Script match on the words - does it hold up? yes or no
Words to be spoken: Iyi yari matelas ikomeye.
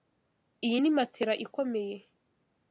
no